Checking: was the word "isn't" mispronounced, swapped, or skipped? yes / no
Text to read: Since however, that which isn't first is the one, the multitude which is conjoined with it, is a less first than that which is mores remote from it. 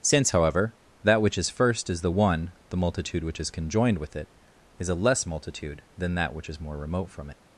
yes